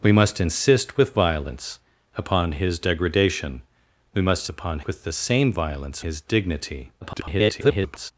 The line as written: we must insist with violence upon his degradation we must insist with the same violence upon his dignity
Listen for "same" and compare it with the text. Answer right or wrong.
right